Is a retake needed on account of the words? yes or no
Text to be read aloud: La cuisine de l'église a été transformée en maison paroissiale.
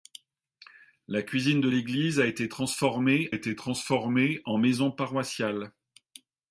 yes